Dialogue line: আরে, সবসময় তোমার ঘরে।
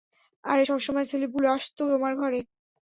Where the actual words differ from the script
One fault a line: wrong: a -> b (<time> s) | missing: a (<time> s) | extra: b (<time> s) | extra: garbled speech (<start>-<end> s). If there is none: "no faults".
extra: ছেলেপুলে আসতো (1.1 s)